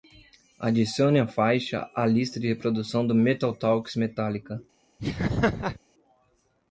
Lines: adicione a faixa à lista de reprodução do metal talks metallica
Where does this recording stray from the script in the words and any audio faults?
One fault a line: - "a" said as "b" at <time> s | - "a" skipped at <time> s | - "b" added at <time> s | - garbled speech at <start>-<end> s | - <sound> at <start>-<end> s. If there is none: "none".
- laugh at 5.0-5.8 s